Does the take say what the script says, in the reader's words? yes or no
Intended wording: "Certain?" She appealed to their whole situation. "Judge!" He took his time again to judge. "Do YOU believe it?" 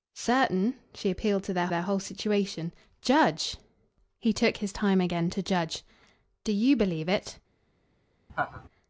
no